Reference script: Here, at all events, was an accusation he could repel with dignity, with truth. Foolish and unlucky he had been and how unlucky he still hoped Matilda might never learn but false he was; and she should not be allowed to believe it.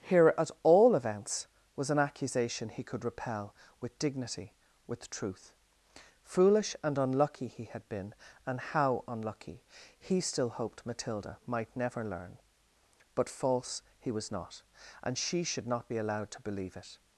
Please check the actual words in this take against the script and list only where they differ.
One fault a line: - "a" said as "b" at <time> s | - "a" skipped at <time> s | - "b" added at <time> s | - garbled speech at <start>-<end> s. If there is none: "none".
- "not" added at 14.3 s